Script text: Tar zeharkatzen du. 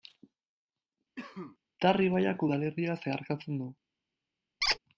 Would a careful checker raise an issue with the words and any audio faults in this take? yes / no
yes